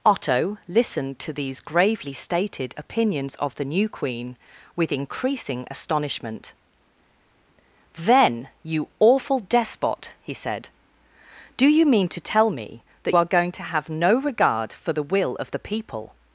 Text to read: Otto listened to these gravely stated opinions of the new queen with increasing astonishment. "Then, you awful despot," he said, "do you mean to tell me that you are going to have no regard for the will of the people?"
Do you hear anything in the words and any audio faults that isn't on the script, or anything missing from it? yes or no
yes